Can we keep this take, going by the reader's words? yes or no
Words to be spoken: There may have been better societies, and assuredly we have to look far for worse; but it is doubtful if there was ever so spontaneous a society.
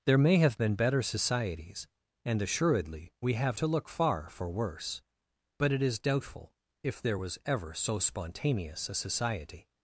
yes